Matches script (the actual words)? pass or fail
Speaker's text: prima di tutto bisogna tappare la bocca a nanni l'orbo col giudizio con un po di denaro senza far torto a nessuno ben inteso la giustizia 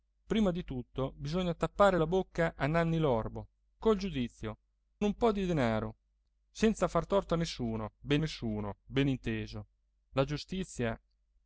fail